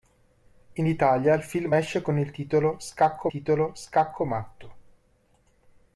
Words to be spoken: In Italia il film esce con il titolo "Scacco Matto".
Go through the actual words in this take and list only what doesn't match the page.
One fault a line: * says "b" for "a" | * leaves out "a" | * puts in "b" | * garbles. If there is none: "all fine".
* puts in "titolo Scacco"